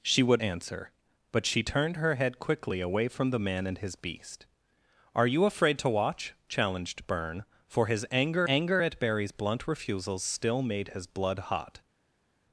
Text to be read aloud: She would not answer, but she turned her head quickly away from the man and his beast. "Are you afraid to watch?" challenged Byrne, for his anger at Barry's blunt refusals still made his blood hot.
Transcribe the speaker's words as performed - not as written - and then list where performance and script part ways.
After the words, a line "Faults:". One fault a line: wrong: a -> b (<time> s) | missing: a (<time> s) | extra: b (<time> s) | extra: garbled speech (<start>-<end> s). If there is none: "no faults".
She would answer, but she turned her head quickly away from the man and his beast. "Are you afraid to watch?" challenged Byrne, for his anger anger at Barry's blunt refusals still made his blood hot.
Faults:
missing: not (0.4 s)
extra: anger (8.5 s)